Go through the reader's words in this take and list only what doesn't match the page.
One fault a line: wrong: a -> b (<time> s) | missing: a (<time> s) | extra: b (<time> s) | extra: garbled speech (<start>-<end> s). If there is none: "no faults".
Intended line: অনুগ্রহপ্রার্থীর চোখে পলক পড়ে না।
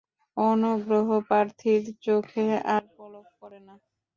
extra: আর (2.7 s)